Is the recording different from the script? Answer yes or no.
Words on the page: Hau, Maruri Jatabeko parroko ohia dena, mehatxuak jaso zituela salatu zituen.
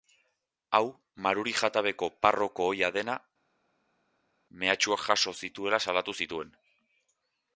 no